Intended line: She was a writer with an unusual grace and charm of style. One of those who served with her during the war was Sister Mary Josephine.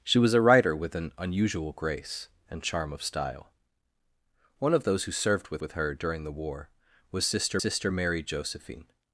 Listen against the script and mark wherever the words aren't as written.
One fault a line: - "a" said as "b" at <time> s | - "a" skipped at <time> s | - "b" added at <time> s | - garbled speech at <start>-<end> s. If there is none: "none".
- "with" added at 5.6 s
- "Sister" added at 7.6 s